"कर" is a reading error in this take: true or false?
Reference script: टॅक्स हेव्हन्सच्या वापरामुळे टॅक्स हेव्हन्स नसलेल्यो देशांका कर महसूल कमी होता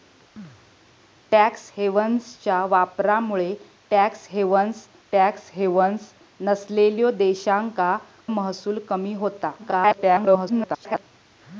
true